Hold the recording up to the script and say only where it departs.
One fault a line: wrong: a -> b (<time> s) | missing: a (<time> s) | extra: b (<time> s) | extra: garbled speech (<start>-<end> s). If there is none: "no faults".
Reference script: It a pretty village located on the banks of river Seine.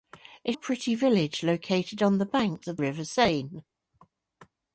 no faults